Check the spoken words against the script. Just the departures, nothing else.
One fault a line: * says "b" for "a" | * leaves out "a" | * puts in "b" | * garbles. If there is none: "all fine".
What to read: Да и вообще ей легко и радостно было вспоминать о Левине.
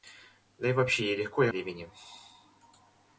* leaves out "радостно было вспоминать"